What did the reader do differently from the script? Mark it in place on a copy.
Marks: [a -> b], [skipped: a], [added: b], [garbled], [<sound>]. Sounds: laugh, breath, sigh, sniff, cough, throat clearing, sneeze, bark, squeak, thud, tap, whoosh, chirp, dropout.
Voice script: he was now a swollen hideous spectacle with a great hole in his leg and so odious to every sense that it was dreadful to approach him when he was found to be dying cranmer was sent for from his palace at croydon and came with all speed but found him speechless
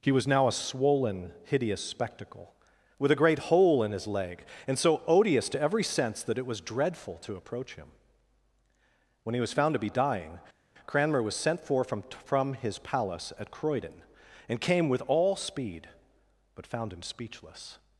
he was now a swollen hideous spectacle with a great hole in his leg and so odious to every sense that it was dreadful to approach him when he was found to be dying cranmer was sent for from [added: from] his palace at croydon and came with all speed but found him speechless